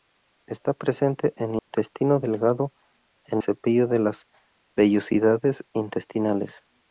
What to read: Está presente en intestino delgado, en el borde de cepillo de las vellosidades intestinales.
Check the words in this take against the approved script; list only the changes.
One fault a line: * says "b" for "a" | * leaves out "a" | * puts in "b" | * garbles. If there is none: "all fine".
* leaves out "el borde de"